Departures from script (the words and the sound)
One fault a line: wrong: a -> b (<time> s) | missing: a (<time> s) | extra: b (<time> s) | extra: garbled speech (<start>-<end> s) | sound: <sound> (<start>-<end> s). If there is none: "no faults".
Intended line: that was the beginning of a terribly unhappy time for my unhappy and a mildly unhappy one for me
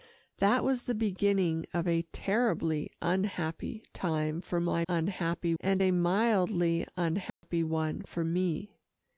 sound: dropout (7.3-7.4 s)